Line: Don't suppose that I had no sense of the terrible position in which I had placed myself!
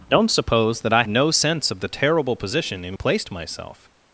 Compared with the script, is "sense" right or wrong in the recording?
right